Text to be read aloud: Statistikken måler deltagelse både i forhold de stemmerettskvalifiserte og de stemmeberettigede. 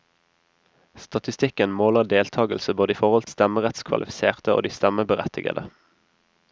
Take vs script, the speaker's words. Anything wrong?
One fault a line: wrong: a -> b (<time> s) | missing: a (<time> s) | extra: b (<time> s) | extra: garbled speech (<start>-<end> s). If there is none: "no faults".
no faults